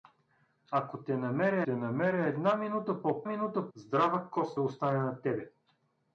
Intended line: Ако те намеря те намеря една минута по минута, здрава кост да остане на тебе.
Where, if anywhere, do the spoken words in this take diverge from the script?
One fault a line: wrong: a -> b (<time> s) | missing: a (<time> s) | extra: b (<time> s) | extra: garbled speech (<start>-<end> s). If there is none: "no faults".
no faults